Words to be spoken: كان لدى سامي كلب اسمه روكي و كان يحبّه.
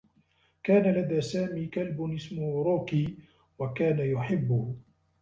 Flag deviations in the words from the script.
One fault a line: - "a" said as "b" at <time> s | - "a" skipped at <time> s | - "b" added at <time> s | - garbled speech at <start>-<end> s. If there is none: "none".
none